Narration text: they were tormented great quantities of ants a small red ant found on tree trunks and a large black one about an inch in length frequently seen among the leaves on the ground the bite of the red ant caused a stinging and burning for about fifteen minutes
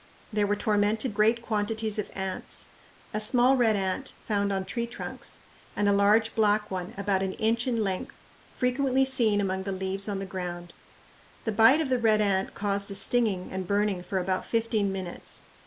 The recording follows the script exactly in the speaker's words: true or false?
true